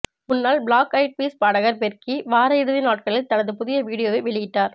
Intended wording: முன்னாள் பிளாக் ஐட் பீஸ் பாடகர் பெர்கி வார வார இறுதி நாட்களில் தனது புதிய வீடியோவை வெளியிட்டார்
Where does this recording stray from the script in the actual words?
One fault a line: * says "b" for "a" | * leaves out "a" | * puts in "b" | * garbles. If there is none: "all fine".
* leaves out "வார"